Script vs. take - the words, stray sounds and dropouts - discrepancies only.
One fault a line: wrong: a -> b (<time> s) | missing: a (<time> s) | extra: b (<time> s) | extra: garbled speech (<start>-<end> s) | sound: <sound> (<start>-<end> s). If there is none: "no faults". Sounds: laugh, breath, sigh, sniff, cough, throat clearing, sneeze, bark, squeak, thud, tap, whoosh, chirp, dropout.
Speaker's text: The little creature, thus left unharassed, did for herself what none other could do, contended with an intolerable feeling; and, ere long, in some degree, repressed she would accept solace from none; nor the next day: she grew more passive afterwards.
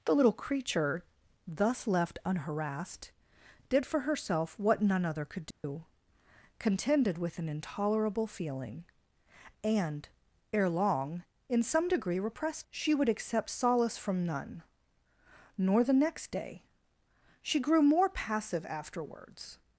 sound: dropout (5.5-5.6 s)